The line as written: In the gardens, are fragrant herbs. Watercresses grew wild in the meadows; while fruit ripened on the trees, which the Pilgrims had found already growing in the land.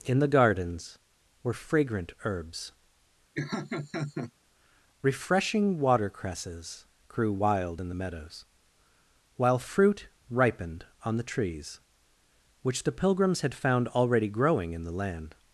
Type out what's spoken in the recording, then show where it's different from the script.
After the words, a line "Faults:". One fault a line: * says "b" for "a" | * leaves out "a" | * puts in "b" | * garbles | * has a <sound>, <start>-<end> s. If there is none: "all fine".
In the gardens, were fragrant herbs. Refreshing watercresses grew wild in the meadows; while fruit ripened on the trees, which the Pilgrims had found already growing in the land.
Faults:
* says "were" for "are"
* has a laugh, 3.4-4.3 s
* puts in "Refreshing"